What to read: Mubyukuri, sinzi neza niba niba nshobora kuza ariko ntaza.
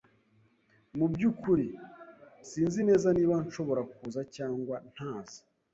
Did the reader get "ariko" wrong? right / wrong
wrong